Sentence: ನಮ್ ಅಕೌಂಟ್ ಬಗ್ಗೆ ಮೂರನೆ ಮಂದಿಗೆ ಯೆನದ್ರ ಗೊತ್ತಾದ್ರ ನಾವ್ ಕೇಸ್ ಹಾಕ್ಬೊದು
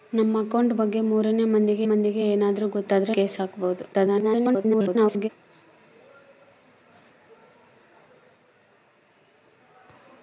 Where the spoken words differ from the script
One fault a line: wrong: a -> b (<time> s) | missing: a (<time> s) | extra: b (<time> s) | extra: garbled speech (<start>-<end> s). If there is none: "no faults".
extra: ಮಂದಿಗೆ (1.9 s)
missing: ನಾವ್ (3.1 s)
extra: garbled speech (3.9-5.3 s)